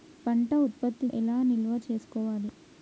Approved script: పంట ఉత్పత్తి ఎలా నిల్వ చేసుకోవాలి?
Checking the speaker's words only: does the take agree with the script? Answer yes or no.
yes